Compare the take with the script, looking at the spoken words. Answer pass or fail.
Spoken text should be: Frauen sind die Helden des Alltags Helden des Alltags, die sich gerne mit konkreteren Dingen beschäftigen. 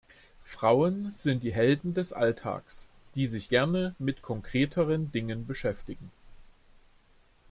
fail